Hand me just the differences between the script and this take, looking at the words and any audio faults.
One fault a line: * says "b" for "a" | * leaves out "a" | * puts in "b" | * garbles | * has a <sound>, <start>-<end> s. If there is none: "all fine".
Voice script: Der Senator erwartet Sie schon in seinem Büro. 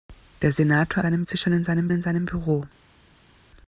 * says "seinem" for "erwartet"
* puts in "in seinem"